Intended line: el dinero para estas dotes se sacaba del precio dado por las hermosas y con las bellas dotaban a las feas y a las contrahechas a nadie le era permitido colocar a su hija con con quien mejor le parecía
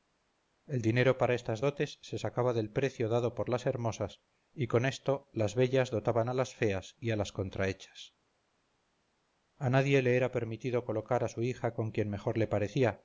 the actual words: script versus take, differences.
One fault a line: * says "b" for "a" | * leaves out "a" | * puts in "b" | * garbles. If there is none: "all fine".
* puts in "esto"
* leaves out "con"